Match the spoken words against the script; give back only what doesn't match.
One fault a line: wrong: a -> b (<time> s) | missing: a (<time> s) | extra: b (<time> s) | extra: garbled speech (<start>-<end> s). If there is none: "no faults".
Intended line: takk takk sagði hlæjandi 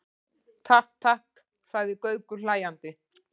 extra: gaukur (2.1 s)